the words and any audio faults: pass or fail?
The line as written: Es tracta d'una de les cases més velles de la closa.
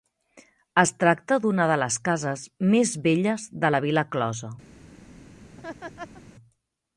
fail